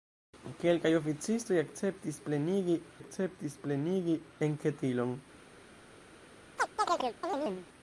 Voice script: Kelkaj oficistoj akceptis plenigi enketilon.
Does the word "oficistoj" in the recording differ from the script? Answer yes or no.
no